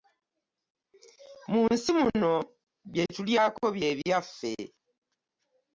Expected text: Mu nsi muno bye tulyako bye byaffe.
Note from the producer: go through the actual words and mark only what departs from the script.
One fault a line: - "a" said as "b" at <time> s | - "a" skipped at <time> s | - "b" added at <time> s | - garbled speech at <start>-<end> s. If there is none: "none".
none